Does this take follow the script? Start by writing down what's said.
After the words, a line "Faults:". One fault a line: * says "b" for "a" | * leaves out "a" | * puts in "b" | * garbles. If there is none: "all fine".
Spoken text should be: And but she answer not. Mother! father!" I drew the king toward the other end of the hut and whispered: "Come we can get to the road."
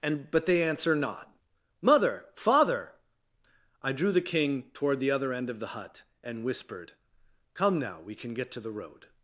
And but they answer not. Mother! father!" I drew the king toward the other end of the hut and whispered: "Come now we can get to the road."
Faults:
* says "they" for "she"
* puts in "now"